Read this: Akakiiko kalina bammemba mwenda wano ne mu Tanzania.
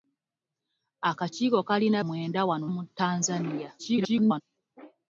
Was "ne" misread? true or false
true